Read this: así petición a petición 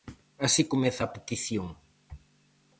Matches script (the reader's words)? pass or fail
fail